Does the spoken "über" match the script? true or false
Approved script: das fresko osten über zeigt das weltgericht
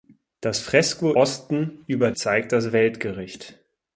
true